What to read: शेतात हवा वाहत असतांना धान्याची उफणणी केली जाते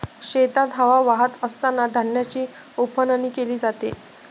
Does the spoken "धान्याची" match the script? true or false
true